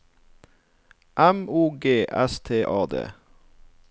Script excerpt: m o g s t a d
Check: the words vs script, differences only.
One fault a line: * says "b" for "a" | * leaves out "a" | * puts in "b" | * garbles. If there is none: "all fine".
all fine